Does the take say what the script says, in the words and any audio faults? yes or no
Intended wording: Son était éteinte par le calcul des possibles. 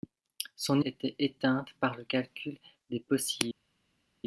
yes